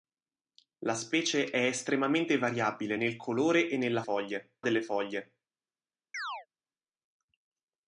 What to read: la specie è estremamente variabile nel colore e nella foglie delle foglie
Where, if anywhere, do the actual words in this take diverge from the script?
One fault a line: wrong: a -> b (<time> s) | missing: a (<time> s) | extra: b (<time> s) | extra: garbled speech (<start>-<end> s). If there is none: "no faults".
no faults